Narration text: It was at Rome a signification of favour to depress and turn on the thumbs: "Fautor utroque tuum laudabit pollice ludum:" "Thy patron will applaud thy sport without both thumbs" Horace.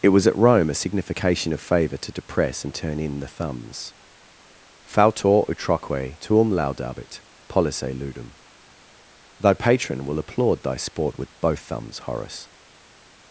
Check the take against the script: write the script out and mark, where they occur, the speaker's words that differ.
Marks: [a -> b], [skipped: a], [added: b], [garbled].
It was at Rome a signification of favour to depress and turn [on -> in] the thumbs: "Fautor utroque tuum laudabit pollice ludum:" "Thy patron will applaud thy sport [without -> with] both thumbs" Horace.